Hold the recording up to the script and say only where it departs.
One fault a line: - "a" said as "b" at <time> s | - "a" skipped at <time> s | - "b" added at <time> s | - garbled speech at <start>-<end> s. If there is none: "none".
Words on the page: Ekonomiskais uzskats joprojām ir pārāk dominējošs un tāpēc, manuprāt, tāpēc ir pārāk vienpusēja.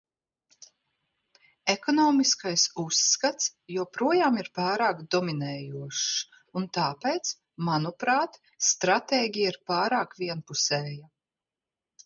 - "tāpēc" said as "stratēģija" at 8.7 s